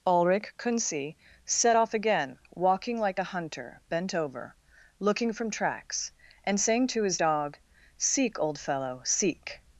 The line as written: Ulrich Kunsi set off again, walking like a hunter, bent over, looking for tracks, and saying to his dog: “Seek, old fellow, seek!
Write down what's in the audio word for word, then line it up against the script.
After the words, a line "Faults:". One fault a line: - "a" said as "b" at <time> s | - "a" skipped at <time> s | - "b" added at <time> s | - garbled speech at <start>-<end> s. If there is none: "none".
Ulrich Kunsi set off again, walking like a hunter, bent over, looking from tracks, and saying to his dog: “Seek, old fellow, seek!
Faults:
- "for" said as "from" at 5.3 s